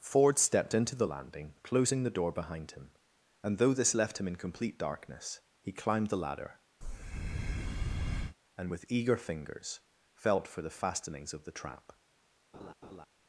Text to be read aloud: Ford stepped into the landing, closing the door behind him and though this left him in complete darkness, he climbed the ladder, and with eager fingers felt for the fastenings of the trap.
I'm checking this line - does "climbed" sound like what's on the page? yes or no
yes